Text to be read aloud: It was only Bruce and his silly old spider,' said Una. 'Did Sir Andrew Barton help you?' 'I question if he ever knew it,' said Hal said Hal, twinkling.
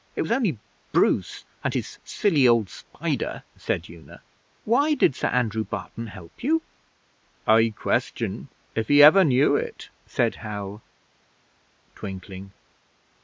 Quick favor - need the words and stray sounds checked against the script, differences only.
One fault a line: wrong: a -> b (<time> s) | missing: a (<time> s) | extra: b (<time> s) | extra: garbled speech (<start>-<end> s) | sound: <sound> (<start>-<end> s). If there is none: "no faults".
extra: Why (4.6 s)
missing: said Hal (10.8 s)